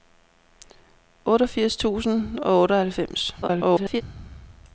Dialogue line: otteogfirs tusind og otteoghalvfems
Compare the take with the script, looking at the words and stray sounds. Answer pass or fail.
fail